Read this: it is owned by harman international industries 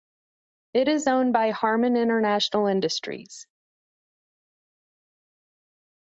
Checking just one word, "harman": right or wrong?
right